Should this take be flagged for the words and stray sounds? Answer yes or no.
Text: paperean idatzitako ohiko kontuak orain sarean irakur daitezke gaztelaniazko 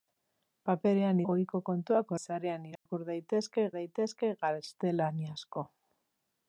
yes